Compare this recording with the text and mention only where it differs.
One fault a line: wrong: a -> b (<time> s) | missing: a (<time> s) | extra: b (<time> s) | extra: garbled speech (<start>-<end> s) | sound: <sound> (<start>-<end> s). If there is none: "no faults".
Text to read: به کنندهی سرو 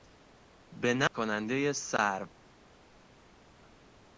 no faults